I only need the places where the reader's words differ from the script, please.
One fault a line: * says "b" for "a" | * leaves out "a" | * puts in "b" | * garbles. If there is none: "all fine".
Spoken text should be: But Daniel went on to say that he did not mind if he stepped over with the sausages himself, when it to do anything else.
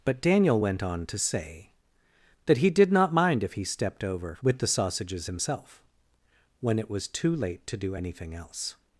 * puts in "was too late"